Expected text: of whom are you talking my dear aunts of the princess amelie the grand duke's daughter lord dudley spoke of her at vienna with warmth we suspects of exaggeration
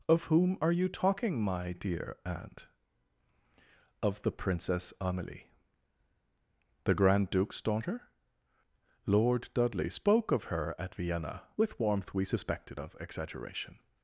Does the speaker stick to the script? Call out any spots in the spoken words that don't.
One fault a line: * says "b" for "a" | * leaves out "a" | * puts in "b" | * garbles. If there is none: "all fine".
* says "aunt" for "aunts"
* says "suspected" for "suspects"